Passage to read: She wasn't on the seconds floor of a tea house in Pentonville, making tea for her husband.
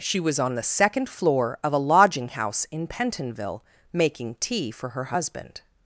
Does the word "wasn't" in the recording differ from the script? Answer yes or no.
yes